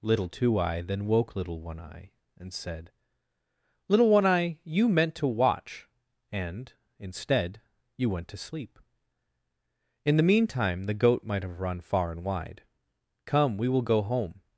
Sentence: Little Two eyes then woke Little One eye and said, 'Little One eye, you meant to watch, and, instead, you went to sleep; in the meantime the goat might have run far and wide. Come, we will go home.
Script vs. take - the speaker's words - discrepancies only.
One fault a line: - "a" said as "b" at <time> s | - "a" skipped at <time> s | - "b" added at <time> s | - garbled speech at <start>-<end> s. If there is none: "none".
- "eyes" said as "eye" at 0.6 s